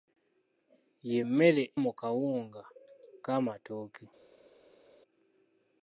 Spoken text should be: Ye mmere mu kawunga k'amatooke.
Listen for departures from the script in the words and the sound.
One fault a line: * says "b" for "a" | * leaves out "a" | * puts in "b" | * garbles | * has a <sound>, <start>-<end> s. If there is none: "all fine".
all fine